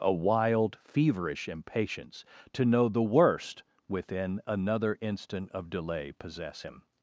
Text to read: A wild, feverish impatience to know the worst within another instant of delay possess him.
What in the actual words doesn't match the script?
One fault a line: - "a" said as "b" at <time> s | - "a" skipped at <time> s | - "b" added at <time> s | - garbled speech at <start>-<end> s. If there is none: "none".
none